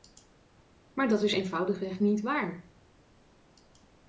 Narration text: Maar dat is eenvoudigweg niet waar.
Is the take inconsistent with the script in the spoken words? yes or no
no